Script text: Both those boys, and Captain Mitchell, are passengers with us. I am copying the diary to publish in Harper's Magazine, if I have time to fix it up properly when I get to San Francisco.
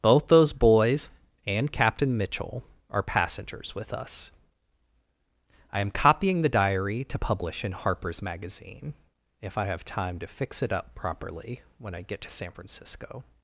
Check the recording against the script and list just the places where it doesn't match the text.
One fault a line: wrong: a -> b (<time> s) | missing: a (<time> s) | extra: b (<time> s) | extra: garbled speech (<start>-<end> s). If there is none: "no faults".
no faults